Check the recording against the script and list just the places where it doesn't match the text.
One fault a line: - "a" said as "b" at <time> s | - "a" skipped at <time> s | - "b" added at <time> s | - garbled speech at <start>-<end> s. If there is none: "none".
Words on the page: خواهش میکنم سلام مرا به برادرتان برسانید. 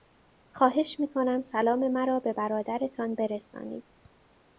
none